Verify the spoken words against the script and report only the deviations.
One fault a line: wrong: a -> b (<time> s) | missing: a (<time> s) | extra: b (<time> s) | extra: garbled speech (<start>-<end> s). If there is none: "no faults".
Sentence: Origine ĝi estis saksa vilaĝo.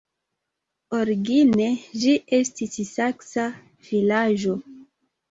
no faults